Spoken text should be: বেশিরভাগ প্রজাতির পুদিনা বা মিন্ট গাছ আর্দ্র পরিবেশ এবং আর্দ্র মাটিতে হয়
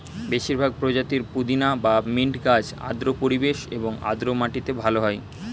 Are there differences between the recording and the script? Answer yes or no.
yes